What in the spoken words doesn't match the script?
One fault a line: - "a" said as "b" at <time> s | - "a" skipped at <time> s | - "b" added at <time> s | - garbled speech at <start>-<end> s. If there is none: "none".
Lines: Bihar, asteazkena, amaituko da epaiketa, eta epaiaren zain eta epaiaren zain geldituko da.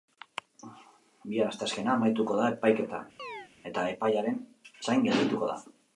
- "eta epaiaren zain" skipped at 5.1 s